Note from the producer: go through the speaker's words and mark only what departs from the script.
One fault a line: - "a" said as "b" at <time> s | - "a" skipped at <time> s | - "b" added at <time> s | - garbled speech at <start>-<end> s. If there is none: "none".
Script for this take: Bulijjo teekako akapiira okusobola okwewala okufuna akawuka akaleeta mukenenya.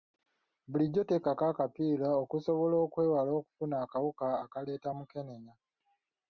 none